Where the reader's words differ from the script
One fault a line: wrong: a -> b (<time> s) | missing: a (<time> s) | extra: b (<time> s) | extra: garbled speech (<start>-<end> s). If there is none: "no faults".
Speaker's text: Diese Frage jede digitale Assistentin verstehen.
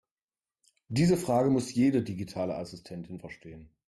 extra: muss (1.5 s)